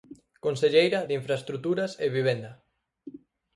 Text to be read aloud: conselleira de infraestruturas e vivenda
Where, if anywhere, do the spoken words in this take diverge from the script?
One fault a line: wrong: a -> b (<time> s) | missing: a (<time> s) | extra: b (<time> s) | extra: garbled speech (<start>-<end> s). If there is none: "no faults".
no faults